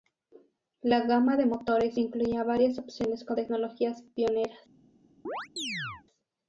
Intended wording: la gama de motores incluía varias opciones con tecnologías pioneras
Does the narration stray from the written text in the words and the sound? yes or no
yes